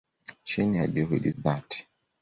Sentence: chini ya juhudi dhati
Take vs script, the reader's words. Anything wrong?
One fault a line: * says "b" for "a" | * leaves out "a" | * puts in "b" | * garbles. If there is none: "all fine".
all fine